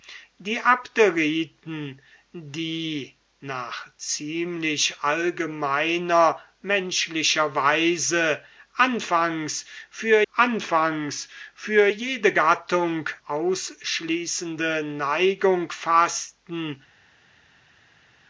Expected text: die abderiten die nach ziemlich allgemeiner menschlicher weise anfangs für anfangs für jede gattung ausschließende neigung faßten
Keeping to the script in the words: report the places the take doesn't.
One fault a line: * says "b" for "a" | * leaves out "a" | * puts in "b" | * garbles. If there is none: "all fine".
all fine